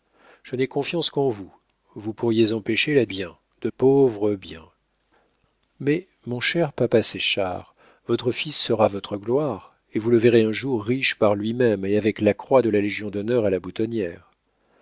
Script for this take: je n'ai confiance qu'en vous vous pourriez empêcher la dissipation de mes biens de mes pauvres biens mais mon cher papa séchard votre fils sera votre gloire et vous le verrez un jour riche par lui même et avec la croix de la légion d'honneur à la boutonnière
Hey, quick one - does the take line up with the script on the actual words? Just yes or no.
no